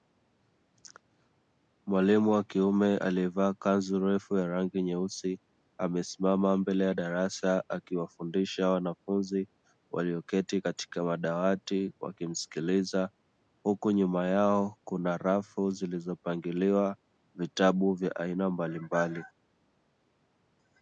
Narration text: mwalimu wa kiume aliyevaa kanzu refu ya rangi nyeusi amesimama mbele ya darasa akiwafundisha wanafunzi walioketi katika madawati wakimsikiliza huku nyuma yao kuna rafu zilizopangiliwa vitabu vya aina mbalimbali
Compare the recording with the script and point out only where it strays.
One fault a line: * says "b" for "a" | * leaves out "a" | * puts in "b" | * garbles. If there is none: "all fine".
all fine